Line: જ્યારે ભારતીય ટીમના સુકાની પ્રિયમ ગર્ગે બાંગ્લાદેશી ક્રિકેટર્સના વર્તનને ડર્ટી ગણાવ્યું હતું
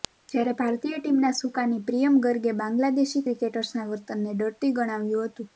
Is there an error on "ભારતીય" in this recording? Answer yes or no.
no